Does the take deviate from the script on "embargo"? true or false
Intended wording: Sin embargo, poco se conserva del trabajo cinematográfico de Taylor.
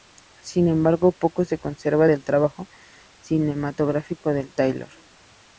false